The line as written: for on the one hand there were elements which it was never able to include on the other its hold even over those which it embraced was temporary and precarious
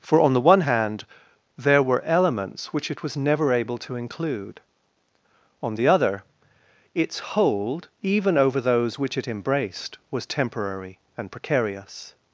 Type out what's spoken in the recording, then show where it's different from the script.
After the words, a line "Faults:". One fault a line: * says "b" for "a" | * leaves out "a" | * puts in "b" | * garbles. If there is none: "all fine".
for on the one hand there were elements which it was never able to include on the other its hold even over those which it embraced was temporary and precarious
Faults:
all fine